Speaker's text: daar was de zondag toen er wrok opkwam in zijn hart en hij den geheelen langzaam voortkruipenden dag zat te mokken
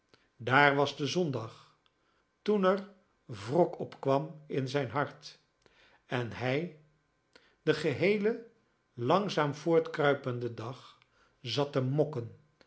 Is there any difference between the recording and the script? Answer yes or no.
no